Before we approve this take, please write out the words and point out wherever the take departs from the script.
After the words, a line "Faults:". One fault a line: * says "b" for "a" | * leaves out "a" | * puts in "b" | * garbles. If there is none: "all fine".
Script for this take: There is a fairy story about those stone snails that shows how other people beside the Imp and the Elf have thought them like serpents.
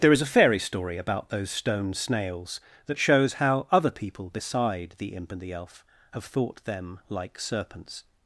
There is a fairy story about those stone snails that shows how other people beside the Imp and the Elf have thought them like serpents.
Faults:
all fine